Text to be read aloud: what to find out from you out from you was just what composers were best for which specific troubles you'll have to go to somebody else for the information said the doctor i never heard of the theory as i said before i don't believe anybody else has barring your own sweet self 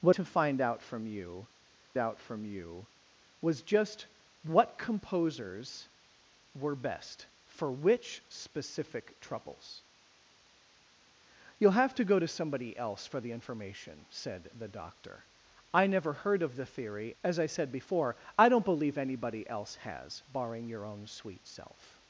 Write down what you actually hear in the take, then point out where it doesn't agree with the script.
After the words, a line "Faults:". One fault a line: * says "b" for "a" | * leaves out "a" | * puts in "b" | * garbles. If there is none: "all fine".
what to find out from you out from you was just what composers were best for which specific troubles you'll have to go to somebody else for the information said the doctor i never heard of the theory as i said before i don't believe anybody else has barring your own sweet self
Faults:
all fine